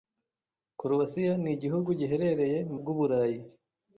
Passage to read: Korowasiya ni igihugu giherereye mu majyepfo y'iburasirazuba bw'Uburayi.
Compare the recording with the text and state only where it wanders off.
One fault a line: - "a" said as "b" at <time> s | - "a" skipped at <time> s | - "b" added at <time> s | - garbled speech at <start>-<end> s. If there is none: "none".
- "majyepfo y'iburasirazuba" skipped at 2.8 s